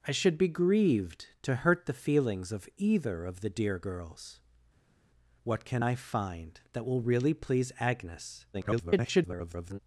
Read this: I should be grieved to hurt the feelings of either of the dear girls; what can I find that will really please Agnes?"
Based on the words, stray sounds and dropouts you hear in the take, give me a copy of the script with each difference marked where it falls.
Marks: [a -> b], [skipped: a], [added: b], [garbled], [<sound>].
I should be grieved to hurt the feelings of either of the dear girls; what can I find that will really please Agnes?" [garbled]